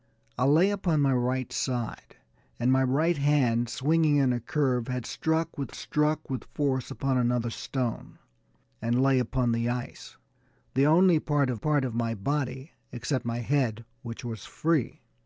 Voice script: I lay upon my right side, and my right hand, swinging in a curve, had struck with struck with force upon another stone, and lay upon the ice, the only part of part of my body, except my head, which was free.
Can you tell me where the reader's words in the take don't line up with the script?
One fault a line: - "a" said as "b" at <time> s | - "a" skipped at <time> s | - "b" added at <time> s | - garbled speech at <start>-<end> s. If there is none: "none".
none